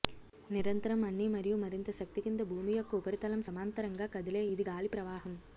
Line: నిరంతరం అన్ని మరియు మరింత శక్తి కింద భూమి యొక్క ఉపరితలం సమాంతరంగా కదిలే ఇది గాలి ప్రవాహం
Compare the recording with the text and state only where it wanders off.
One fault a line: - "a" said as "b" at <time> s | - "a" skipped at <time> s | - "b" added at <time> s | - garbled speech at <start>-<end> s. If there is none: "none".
none